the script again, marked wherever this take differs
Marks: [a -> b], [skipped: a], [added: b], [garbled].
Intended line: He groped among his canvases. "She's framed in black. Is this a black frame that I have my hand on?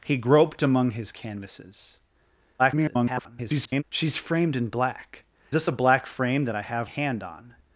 He groped among his canvases. [garbled] "She's framed in black. [skipped: Is] this a black frame that I have [skipped: my] hand on?